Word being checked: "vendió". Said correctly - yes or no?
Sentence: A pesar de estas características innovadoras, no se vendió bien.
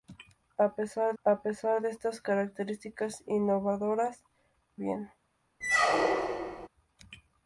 no